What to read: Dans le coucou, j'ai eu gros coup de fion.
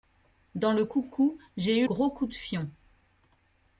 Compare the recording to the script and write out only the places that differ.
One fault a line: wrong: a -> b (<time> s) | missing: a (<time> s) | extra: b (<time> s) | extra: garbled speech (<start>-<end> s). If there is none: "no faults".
no faults